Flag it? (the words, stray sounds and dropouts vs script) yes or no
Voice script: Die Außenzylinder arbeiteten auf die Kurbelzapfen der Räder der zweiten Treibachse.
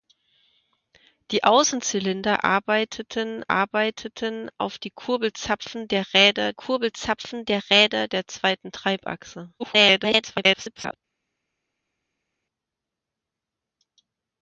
yes